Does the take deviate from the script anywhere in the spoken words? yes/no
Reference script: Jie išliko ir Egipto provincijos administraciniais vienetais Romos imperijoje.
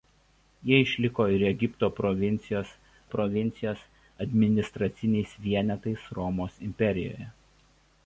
yes